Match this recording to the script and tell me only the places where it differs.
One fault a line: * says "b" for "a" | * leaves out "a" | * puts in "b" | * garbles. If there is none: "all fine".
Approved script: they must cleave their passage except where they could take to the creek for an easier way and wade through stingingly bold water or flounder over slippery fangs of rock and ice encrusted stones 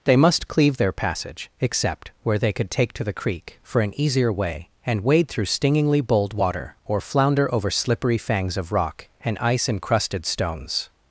all fine